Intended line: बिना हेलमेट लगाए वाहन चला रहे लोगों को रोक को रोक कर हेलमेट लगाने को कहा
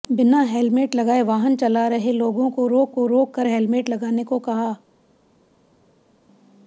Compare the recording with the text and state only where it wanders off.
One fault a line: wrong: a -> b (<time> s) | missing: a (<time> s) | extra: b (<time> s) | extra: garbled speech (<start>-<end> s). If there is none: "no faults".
no faults